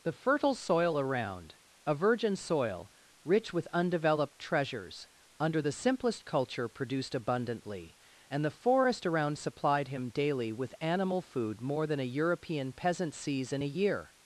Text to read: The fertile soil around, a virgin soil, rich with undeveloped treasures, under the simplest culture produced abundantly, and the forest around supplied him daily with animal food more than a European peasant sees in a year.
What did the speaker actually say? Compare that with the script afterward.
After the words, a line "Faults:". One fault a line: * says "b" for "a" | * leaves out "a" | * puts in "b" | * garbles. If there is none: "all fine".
The fertile soil around, a virgin soil, rich with undeveloped treasures, under the simplest culture produced abundantly, and the forest around supplied him daily with animal food more than a European peasant sees in a year.
Faults:
all fine